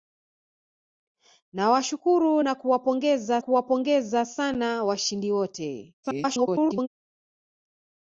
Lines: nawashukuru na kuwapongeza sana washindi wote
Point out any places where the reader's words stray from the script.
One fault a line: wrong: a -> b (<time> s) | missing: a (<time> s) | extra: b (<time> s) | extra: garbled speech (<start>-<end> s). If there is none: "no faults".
extra: kuwapongeza (3.4 s)
extra: garbled speech (6.0-6.9 s)